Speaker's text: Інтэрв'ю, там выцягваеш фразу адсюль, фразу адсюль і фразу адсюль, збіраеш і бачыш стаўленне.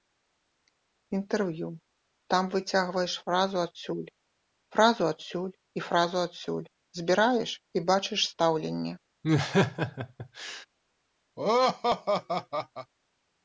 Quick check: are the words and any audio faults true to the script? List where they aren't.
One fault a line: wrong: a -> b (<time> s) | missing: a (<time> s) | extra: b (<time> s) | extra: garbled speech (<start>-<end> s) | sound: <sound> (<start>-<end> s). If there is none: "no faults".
sound: laugh (9.2-10.7 s)
sound: laugh (11.4-12.9 s)